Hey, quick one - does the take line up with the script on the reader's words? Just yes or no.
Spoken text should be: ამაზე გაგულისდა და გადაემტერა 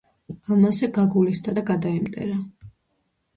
yes